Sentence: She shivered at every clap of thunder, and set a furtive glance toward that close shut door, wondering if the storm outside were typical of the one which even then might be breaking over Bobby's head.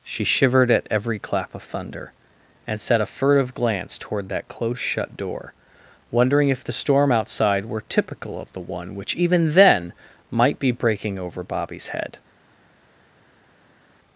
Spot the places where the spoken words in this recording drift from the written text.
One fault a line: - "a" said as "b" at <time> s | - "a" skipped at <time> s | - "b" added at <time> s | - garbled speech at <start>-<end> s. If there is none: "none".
none